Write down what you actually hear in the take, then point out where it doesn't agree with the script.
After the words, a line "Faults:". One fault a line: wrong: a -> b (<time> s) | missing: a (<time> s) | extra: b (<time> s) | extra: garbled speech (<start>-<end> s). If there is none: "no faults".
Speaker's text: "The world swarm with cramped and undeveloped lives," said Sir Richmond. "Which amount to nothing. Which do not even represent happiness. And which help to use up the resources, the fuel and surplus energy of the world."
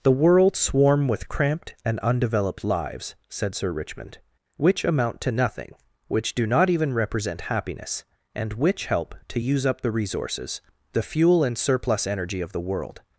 "The world swarm with cramped and undeveloped lives," said Sir Richmond. "Which amount to nothing. Which do not even represent happiness. And which help to use up the resources, the fuel and surplus energy of the world."
Faults:
no faults